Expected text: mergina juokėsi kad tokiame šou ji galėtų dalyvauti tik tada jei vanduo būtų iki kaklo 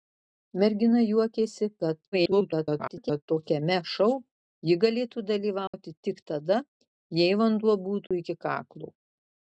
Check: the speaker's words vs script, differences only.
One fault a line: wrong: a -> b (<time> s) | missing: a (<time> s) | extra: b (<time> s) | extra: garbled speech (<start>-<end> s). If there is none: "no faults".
extra: garbled speech (2.1-3.2 s)